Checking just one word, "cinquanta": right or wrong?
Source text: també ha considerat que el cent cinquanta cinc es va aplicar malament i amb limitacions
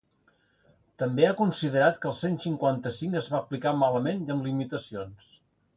right